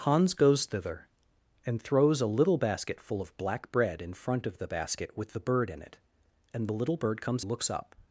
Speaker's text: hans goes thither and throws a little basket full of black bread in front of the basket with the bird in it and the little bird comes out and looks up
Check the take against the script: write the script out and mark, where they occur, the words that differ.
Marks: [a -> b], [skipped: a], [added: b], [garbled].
hans goes thither and throws a little basket full of black bread in front of the basket with the bird in it and the little bird comes [skipped: out and] looks up